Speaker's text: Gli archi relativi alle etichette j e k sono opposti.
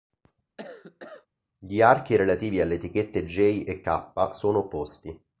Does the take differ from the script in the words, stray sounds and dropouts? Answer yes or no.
yes